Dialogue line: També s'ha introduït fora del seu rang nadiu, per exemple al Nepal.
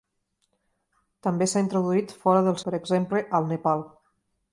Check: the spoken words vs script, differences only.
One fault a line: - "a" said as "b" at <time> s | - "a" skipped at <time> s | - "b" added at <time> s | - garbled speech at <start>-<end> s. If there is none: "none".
- "seu rang nadiu" skipped at 2.6 s